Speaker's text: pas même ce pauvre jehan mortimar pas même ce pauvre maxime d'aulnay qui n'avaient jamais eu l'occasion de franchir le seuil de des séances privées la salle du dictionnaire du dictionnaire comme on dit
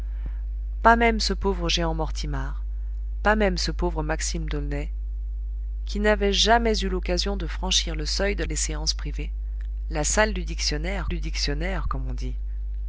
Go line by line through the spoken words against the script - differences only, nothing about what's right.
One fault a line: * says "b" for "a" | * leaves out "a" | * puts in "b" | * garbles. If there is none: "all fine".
all fine